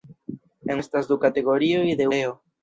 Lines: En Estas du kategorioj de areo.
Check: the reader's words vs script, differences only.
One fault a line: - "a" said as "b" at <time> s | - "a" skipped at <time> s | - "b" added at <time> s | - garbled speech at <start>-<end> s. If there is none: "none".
none